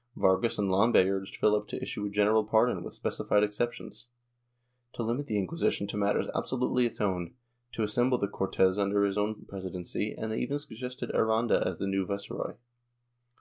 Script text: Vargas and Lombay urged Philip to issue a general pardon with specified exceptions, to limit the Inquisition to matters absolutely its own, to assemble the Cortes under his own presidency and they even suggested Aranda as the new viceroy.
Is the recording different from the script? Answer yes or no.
no